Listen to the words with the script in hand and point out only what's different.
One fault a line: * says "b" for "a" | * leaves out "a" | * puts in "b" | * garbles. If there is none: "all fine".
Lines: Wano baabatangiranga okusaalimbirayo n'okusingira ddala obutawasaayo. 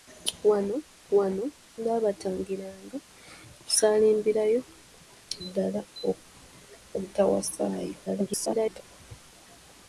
* puts in "wano"
* leaves out "n'okusingira"
* garbles